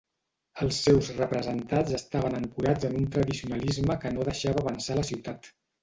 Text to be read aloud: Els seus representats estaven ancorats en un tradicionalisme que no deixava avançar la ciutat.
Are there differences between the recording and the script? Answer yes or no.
no